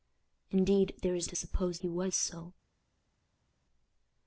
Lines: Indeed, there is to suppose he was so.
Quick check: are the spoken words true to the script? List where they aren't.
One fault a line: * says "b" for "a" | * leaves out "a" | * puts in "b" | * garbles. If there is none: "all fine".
all fine